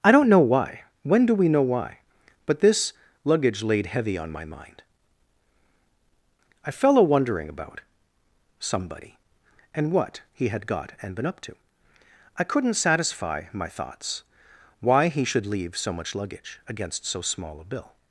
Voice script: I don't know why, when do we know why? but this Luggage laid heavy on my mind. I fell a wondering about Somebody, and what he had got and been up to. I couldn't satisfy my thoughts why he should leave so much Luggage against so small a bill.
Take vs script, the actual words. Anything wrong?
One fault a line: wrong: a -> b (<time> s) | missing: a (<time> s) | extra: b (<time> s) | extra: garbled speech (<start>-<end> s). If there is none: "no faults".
no faults